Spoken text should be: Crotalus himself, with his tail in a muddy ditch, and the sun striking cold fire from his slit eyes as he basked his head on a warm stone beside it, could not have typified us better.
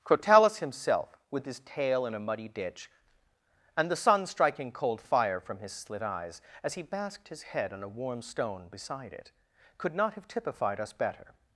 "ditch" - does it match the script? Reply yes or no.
yes